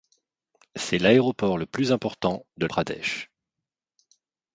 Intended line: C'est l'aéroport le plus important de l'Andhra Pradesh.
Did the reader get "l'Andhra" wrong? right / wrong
wrong